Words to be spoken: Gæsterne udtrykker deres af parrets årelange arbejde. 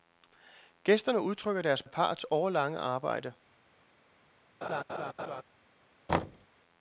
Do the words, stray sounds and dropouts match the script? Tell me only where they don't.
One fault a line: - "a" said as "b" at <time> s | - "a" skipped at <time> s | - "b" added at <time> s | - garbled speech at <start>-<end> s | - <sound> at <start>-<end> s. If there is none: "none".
- laugh at 4.6-5.4 s
- thud at 6.1-6.5 s